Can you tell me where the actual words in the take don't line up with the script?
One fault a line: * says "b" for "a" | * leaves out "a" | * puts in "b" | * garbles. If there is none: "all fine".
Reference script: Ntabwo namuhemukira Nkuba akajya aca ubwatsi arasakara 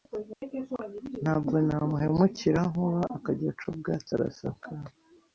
all fine